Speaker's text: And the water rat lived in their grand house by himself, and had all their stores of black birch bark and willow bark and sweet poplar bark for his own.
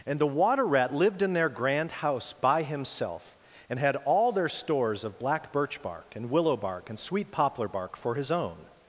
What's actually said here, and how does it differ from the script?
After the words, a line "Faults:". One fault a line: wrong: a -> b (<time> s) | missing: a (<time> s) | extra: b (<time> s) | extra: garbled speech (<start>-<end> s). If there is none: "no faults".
And the water rat lived in their grand house by himself, and had all their stores of black birch bark and willow bark and sweet poplar bark for his own.
Faults:
no faults